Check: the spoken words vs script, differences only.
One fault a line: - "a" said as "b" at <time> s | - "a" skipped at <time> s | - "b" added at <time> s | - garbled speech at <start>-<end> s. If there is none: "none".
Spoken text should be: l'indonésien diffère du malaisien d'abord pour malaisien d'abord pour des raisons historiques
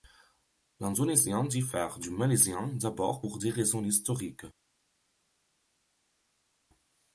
- "malaisien d'abord pour" skipped at 3.4 s